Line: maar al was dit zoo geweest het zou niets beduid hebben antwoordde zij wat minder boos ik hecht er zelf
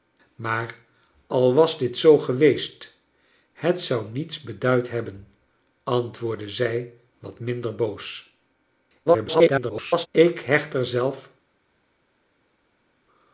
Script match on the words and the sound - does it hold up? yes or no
no